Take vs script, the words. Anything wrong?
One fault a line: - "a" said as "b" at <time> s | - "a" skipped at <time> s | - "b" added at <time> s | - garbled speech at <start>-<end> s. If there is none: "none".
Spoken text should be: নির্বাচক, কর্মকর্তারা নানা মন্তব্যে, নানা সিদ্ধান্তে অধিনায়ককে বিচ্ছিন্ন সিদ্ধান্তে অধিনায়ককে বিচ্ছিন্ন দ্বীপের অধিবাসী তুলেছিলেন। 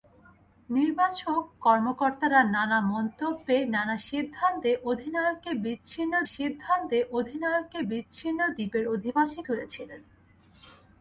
none